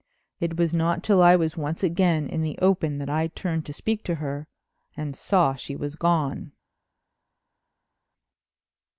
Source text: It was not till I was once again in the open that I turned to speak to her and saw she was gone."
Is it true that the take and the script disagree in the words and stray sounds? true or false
false